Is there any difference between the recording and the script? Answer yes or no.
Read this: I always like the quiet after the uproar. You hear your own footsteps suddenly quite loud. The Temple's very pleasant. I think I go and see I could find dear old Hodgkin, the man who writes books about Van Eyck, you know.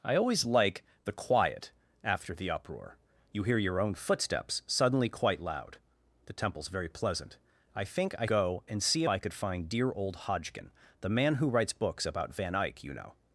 no